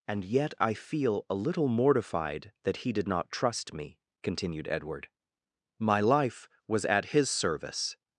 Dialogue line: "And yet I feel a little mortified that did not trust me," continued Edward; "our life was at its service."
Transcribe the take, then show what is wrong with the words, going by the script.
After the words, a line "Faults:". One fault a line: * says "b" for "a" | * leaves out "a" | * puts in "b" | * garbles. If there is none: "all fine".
"And yet I feel a little mortified that he did not trust me," continued Edward; "my life was at his service."
Faults:
* puts in "he"
* says "my" for "our"
* says "his" for "its"